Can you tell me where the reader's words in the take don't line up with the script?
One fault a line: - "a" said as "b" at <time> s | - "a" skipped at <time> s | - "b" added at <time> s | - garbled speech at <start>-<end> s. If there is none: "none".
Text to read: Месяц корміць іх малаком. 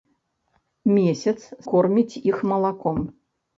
none